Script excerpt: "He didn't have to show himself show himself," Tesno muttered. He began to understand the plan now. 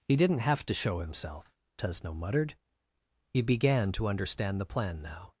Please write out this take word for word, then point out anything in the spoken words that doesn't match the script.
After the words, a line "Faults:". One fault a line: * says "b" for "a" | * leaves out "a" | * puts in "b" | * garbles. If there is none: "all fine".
"He didn't have to show himself," Tesno muttered. He began to understand the plan now.
Faults:
* leaves out "show himself"